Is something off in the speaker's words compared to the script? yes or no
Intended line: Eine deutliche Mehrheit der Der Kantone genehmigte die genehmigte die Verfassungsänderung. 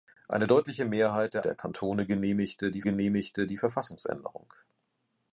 no